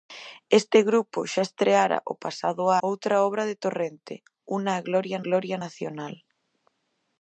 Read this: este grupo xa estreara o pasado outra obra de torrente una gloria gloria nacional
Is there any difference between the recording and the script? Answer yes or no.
no